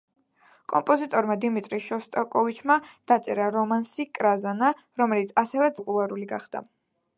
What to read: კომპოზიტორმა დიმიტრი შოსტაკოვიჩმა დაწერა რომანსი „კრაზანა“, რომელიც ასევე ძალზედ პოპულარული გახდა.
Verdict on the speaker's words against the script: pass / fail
fail